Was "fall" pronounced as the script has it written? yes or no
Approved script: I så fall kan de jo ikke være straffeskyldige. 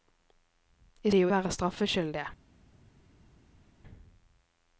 no